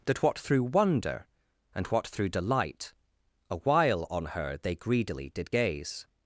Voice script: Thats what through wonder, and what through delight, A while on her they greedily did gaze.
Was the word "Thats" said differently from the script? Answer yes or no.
yes